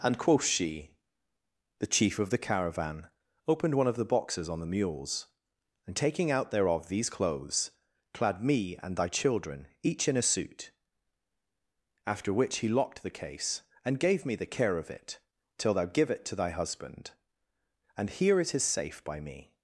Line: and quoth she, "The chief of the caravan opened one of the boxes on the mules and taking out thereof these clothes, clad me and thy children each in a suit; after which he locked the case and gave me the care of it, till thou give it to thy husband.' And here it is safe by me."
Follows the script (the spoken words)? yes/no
yes